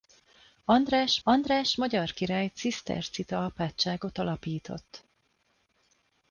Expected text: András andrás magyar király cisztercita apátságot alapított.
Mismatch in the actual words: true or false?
false